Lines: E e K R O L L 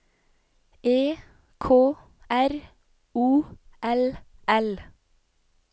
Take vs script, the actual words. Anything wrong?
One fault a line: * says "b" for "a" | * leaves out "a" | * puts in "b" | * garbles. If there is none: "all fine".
* leaves out "e"